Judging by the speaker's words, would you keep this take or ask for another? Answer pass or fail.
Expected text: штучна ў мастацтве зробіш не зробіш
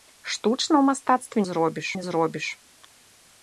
pass